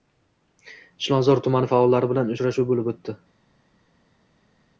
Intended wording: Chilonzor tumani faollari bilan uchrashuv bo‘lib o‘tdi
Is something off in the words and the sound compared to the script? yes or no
no